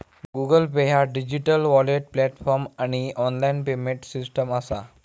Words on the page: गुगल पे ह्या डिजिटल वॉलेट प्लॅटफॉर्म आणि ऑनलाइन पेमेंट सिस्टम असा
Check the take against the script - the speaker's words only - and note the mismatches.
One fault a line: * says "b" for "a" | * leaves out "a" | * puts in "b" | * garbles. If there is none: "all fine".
all fine